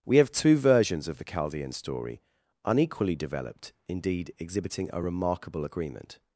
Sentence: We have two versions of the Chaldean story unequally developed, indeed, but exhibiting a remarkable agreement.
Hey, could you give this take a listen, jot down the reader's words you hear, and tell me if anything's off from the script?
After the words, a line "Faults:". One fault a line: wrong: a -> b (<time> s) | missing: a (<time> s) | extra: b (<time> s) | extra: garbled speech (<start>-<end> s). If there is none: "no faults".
We have two versions of the Chaldean story unequally developed, indeed, exhibiting a remarkable agreement.
Faults:
missing: but (4.3 s)